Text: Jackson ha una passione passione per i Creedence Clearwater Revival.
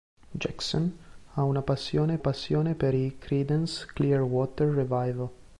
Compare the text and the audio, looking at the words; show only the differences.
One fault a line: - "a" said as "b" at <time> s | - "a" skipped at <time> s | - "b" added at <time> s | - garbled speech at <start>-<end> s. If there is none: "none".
none